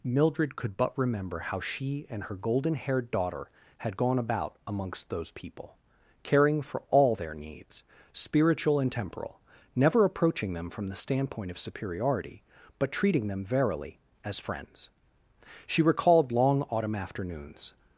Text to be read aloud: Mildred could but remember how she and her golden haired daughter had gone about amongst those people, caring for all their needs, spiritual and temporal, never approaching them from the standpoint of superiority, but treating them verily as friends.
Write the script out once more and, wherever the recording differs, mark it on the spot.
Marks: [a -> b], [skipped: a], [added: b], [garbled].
Mildred could but remember how she and her golden haired daughter had gone about amongst those people, caring for all their needs, spiritual and temporal, never approaching them from the standpoint of superiority, but treating them verily as friends. [added: She recalled long autumn afternoons]